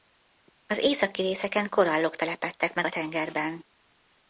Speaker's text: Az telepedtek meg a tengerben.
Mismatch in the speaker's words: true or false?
true